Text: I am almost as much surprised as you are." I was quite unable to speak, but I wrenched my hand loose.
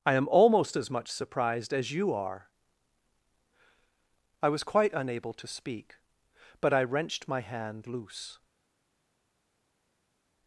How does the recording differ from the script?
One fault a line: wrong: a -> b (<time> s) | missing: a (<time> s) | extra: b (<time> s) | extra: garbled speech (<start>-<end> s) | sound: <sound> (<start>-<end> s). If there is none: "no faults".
no faults